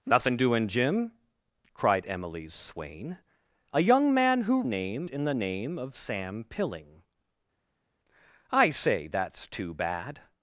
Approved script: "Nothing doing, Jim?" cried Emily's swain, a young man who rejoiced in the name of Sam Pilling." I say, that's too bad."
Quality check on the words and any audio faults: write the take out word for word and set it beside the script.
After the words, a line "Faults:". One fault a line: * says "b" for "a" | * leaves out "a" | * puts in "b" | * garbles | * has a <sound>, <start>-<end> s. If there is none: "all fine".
"Nothing doing, Jim?" cried Emily's swain, a young man who name in the name of Sam Pilling." I say, that's too bad."
Faults:
* says "name" for "rejoiced"